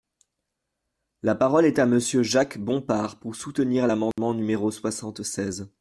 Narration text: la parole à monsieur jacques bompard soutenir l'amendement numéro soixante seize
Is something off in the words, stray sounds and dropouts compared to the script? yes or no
yes